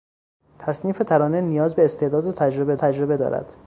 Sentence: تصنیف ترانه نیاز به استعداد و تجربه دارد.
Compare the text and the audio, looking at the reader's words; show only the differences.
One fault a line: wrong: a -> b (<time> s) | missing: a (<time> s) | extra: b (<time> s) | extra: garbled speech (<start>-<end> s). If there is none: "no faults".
extra: تجربه (2.7 s)